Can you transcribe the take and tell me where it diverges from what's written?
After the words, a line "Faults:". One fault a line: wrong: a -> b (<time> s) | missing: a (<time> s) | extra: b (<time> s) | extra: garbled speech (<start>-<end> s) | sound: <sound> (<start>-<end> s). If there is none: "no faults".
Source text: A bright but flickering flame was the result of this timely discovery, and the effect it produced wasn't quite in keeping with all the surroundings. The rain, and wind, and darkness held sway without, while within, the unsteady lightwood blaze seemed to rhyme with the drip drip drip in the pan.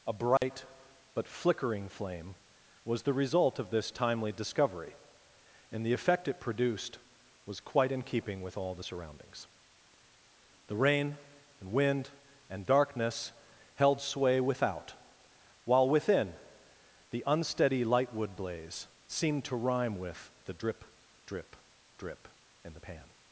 A bright but flickering flame was the result of this timely discovery, and the effect it produced was quite in keeping with all the surroundings. The rain, and wind, and darkness held sway without, while within, the unsteady lightwood blaze seemed to rhyme with the drip drip drip in the pan.
Faults:
sound: dropout (0.4-0.4 s)
wrong: wasn't -> was (7.5 s)